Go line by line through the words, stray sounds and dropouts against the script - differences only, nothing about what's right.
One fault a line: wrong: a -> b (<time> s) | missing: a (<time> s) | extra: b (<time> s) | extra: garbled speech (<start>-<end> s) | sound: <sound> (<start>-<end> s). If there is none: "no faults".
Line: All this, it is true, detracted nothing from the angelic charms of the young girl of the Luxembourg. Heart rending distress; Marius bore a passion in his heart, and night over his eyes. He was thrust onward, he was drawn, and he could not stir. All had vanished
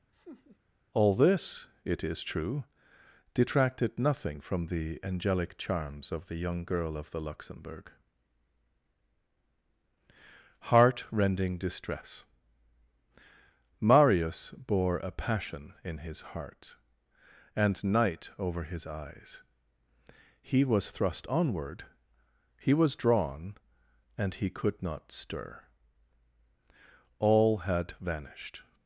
sound: laugh (0.1-0.6 s)